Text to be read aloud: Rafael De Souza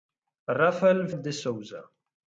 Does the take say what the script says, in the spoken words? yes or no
yes